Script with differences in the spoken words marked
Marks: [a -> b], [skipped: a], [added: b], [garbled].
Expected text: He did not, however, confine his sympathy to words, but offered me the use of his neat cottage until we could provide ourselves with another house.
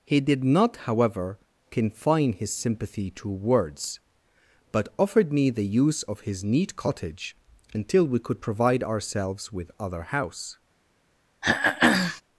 He did not, however, confine his sympathy to words, but offered me the use of his neat cottage until we could provide ourselves with [another -> other] house.